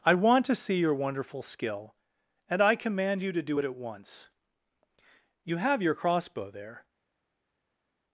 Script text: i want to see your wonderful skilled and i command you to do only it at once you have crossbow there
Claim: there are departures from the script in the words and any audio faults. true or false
true